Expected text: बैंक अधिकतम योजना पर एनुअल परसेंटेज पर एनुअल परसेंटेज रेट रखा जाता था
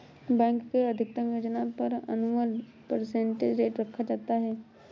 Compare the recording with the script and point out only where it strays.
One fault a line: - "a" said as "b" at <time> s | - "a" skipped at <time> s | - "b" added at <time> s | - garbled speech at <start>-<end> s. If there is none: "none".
- "के" added at 0.7 s
- "पर एनुअल परसेंटेज" skipped at 3.6 s
- "था" said as "है" at 4.4 s